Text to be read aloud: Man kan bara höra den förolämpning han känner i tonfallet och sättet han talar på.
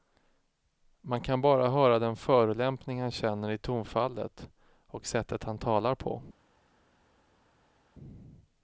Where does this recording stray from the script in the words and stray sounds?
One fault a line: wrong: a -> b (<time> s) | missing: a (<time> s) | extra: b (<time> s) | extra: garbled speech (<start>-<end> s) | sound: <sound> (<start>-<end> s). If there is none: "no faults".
no faults